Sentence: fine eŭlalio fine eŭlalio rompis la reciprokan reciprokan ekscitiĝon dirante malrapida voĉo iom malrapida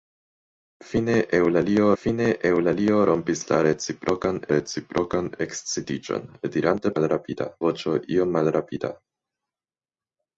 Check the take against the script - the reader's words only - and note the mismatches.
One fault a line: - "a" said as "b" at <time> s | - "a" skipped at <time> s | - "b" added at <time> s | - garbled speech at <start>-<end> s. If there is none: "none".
none